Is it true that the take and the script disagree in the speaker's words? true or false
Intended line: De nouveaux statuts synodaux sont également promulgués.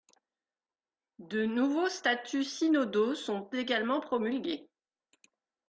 false